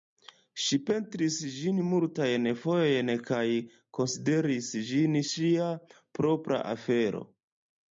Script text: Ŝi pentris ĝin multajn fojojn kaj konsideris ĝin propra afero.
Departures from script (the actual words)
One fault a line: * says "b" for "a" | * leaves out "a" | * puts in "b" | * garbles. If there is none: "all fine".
* puts in "ŝia"